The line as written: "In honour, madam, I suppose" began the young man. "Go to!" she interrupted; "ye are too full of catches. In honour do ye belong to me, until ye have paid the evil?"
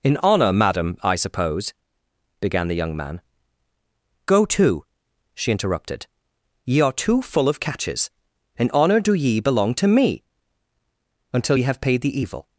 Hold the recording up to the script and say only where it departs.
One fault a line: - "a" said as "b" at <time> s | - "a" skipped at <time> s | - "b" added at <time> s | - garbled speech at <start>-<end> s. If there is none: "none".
none